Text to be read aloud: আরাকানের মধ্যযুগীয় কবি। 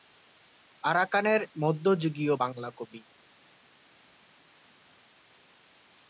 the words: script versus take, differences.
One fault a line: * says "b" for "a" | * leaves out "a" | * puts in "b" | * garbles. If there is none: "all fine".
* puts in "বাংলা"